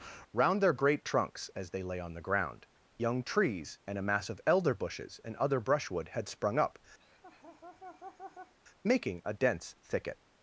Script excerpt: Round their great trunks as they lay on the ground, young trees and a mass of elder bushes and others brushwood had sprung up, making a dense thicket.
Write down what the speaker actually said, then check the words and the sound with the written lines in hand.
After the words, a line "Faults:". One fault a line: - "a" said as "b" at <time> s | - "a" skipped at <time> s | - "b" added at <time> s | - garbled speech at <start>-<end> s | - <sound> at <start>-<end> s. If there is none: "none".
Round their great trunks as they lay on the ground, young trees and a mass of elder bushes and other brushwood had sprung up, making a dense thicket.
Faults:
- "others" said as "other" at 5.3 s
- laugh at 7.0-8.5 s